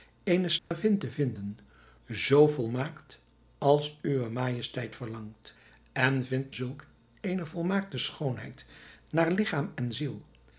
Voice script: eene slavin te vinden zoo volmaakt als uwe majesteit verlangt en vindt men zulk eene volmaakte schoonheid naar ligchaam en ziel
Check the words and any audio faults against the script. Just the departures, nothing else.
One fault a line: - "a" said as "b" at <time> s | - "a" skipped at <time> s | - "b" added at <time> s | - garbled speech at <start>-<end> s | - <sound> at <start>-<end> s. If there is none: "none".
- dropout at 0.6-0.7 s
- "men" skipped at 6.5 s